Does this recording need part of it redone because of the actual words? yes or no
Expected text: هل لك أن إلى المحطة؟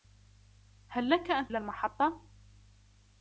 no